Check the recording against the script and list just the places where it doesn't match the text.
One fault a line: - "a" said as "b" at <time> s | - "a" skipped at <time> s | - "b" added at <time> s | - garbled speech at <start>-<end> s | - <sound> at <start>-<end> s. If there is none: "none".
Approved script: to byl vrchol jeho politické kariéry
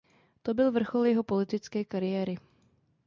none